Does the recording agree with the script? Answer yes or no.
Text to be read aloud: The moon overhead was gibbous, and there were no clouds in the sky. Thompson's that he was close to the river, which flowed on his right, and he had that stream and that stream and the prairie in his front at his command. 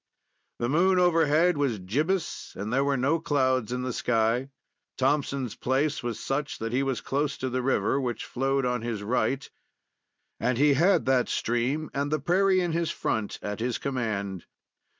no